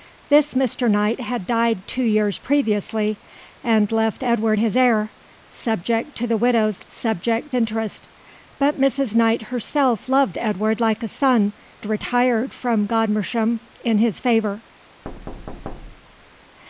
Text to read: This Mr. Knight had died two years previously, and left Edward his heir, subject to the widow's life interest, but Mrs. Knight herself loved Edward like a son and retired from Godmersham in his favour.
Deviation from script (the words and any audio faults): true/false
true